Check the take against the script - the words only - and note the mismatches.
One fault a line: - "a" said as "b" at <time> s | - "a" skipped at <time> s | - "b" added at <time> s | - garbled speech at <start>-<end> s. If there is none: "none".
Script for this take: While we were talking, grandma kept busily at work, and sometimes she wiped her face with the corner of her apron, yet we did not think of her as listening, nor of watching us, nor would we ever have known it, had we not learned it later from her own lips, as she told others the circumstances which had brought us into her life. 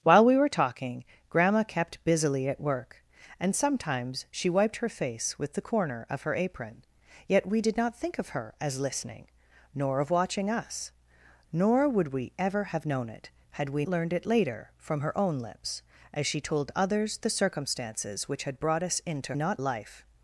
- "not" skipped at 13.8 s
- "her" said as "not" at 19.3 s